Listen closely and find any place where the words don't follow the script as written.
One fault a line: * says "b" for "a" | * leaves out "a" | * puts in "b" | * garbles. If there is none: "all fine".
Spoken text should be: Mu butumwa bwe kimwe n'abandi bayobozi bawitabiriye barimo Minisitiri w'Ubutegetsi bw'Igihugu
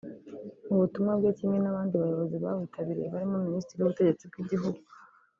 all fine